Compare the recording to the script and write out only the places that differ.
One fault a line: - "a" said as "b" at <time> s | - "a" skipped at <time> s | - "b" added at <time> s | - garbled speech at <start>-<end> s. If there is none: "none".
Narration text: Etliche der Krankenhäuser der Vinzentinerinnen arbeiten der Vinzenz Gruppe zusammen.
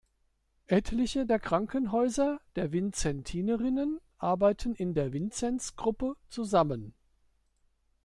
- "in" added at 4.7 s